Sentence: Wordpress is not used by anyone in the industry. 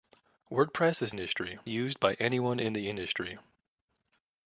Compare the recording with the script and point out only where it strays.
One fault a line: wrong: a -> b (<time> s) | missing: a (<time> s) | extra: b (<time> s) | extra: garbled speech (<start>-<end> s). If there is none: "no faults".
wrong: not -> industry (1.1 s)